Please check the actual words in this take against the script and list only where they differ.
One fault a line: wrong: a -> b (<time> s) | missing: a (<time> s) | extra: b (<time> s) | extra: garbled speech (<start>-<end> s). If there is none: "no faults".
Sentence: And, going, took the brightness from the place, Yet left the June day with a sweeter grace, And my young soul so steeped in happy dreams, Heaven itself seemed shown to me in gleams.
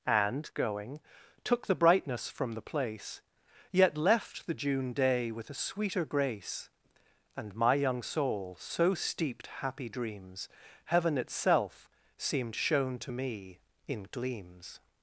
missing: in (9.5 s)